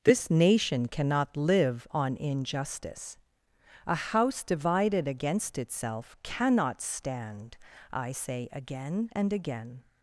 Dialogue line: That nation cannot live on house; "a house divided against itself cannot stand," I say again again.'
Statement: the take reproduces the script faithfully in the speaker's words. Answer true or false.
false